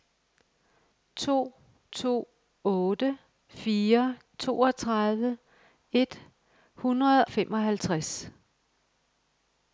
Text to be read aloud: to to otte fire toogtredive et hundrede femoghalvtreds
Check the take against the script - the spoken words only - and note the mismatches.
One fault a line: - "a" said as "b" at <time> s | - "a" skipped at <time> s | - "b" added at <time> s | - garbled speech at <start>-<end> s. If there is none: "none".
none